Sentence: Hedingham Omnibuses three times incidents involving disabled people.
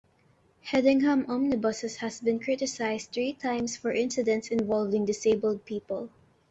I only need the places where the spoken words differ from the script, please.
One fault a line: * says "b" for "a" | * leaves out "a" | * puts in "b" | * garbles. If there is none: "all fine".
* puts in "has been criticised"
* puts in "for"